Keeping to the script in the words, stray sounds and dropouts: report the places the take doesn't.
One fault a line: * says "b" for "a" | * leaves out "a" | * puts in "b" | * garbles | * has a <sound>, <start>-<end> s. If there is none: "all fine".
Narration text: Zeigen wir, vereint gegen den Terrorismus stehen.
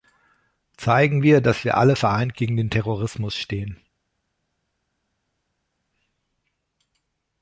* puts in "dass wir alle"